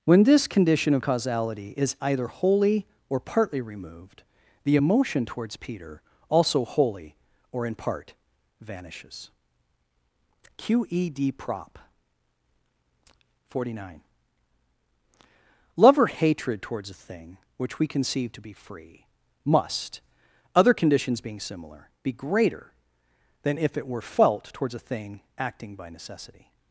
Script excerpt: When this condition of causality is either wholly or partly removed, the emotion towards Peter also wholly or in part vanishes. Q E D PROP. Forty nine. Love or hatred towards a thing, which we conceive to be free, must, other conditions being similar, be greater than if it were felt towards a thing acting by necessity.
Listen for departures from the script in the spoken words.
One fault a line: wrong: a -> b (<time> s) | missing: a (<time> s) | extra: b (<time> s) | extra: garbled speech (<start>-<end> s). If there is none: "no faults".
no faults